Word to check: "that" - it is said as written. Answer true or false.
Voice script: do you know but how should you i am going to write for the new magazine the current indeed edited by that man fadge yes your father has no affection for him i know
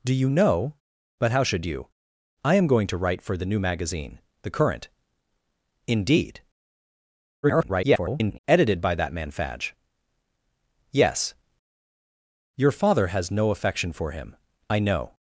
true